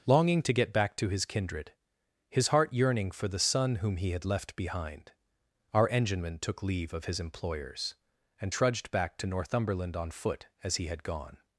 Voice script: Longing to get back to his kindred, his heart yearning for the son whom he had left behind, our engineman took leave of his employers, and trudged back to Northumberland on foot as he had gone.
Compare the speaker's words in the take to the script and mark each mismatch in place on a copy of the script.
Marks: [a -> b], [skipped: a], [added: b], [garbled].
Longing to get back to his kindred, his heart yearning for the son whom he had left behind, our engineman took leave of his employers, and trudged back to Northumberland on foot as he had gone.